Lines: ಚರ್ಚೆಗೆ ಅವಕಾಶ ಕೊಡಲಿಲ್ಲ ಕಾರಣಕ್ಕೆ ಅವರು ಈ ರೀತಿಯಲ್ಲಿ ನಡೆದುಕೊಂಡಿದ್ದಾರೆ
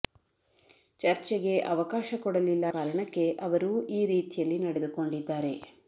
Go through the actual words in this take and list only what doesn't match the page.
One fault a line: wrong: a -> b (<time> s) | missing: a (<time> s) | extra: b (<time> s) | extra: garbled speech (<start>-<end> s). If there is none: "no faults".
no faults